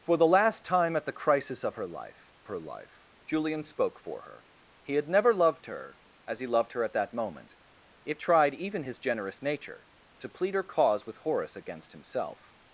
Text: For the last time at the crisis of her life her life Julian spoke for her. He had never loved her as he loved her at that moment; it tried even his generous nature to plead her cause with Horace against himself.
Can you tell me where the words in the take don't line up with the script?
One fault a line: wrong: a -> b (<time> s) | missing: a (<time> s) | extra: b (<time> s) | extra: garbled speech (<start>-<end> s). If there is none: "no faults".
no faults